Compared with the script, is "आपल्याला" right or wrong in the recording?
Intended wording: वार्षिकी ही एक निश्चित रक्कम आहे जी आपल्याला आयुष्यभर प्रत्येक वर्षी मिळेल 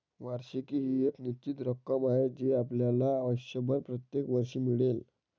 right